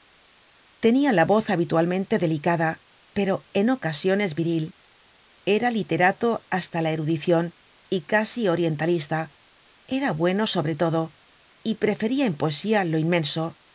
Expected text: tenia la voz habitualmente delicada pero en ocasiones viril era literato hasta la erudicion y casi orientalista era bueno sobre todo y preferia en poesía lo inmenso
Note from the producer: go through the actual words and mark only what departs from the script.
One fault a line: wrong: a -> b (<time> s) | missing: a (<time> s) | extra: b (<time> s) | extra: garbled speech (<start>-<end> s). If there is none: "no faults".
no faults